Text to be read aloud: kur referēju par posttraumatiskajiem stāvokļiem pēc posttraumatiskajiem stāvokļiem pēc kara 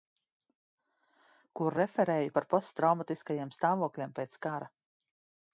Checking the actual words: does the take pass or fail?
fail